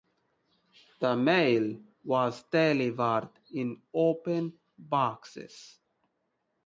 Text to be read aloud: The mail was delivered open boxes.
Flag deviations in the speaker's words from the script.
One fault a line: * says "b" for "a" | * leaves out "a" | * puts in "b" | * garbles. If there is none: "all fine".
* puts in "in"